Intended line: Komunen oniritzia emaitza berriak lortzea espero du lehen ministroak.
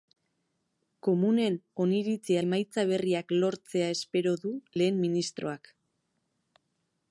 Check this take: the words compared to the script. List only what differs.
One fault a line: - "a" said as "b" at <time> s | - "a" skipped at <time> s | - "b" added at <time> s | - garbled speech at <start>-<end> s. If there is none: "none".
none